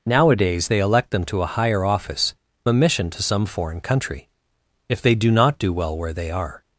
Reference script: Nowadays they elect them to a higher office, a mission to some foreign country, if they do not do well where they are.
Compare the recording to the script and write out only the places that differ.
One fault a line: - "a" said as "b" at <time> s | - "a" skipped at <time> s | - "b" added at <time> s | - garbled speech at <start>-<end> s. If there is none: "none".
none